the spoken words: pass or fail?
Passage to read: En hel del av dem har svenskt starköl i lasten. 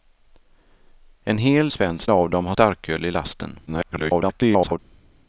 fail